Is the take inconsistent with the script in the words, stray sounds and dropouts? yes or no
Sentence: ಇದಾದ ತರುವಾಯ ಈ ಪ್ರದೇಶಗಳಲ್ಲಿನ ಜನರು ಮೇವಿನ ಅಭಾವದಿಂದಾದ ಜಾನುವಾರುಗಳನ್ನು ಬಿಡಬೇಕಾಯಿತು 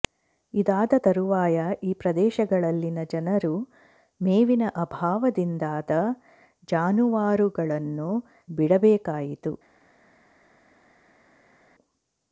no